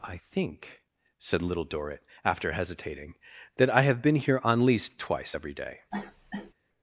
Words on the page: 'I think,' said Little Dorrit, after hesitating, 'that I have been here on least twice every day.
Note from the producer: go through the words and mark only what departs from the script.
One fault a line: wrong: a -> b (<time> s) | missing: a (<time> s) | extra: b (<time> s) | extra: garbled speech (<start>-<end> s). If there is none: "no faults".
no faults